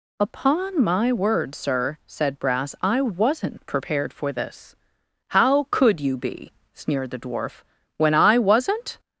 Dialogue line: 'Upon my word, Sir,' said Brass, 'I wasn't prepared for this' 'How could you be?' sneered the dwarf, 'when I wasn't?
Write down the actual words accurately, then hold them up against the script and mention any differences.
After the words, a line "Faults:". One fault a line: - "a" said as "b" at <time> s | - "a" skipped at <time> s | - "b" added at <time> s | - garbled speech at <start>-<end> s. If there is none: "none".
'Upon my word, Sir,' said Brass, 'I wasn't prepared for this' 'How could you be?' sneered the dwarf, 'when I wasn't?
Faults:
none